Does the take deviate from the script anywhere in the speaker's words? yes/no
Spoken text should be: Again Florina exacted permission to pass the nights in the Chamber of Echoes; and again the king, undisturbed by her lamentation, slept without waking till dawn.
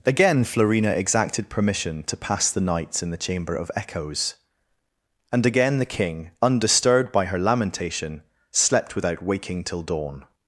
no